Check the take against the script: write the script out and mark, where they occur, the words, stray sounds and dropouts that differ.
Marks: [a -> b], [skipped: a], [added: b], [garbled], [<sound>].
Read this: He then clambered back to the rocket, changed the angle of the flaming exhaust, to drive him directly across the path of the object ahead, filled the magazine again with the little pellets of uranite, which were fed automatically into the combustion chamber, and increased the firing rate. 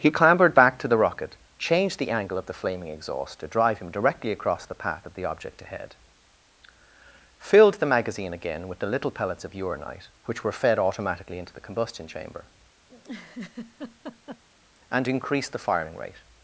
He [skipped: then] clambered back to the rocket, changed the angle of the flaming exhaust, to drive him directly across the path of the object ahead, filled the magazine again with the little pellets of uranite, which were fed automatically into the combustion chamber, [laugh] and increased the firing rate.